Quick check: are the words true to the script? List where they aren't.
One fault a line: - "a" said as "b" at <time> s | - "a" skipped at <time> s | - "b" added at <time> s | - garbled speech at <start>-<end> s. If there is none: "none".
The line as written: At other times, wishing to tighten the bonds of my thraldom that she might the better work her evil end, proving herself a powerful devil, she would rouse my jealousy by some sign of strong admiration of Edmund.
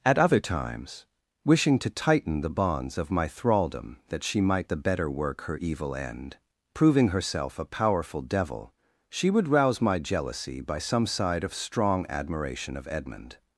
- "sign" said as "side" at 11.0 s